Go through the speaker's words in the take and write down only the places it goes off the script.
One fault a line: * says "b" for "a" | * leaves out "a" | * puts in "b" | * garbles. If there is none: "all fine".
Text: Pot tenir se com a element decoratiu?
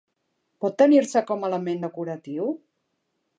all fine